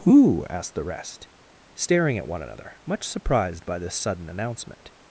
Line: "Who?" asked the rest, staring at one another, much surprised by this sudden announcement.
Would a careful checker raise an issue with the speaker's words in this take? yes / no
no